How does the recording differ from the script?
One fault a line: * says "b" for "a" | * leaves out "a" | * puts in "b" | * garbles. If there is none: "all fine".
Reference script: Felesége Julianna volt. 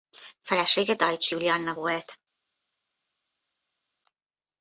* puts in "Deutsch"